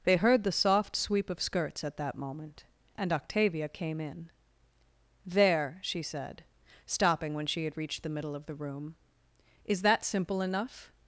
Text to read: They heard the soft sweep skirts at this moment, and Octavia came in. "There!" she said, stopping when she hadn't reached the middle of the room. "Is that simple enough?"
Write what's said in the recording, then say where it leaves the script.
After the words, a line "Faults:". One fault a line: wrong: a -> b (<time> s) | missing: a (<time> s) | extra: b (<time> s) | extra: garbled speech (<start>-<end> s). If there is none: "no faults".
They heard the soft sweep of skirts at that moment, and Octavia came in. "There!" she said, stopping when she had reached the middle of the room. "Is that simple enough?"
Faults:
extra: of (1.3 s)
wrong: this -> that (2.0 s)
wrong: hadn't -> had (7.6 s)